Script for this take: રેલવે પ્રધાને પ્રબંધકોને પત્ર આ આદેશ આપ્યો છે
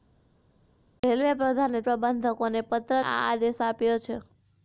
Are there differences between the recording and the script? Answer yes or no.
no